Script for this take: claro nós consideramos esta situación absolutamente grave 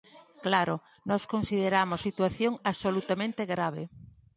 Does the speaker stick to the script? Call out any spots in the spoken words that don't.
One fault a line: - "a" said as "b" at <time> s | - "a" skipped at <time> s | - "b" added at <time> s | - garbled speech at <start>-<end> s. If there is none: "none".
- "esta" skipped at 2.0 s